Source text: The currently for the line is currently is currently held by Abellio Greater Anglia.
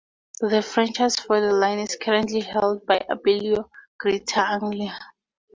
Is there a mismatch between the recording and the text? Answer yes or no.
yes